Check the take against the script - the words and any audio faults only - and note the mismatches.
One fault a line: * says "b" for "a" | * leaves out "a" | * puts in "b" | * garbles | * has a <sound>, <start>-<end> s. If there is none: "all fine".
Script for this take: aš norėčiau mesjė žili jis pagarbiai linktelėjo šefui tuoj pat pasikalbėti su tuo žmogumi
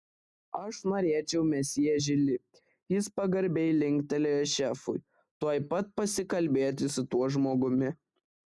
all fine